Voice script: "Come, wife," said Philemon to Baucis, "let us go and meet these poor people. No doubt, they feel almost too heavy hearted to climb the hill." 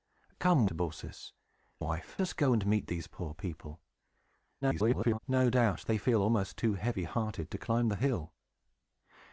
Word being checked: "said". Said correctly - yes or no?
no